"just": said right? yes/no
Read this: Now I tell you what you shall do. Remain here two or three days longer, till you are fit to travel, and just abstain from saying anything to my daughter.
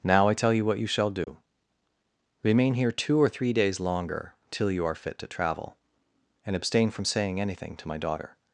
no